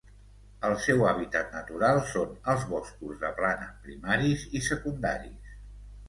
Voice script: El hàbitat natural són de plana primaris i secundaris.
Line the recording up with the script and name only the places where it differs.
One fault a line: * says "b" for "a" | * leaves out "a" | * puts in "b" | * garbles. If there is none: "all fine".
* puts in "seu"
* puts in "els boscos"